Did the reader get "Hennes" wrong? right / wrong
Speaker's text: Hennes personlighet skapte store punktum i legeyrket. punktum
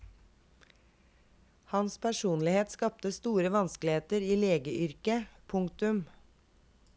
wrong